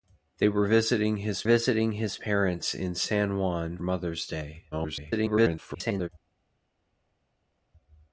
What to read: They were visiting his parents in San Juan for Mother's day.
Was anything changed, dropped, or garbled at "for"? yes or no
yes